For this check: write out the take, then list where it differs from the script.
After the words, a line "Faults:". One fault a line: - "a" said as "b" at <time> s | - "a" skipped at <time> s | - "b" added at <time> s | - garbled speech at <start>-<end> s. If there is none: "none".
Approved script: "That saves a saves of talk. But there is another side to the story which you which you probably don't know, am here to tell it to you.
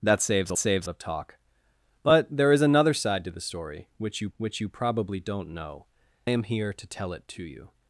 "That saves a saves of talk. But there is another side to the story which you which you probably don't know, am here to tell it to you.
Faults:
none